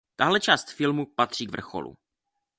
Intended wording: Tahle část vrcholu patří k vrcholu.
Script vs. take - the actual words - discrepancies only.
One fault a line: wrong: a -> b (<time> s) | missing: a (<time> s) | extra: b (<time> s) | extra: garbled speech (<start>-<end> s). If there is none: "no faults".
wrong: vrcholu -> filmu (0.7 s)